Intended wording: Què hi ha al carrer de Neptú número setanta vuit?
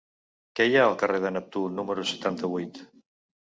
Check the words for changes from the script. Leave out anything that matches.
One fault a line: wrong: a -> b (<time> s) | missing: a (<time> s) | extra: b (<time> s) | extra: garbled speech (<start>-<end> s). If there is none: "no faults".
no faults